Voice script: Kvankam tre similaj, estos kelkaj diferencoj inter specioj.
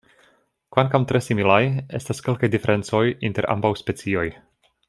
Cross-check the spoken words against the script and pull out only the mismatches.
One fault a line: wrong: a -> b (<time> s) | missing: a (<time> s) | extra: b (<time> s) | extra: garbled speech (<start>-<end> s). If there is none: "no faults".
wrong: estos -> estas (2.0 s)
extra: ambaŭ (3.6 s)